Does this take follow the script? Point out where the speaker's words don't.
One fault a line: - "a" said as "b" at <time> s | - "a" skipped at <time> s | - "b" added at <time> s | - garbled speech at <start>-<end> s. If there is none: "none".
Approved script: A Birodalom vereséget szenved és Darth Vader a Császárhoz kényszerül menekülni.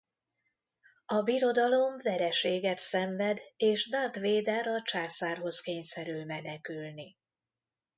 none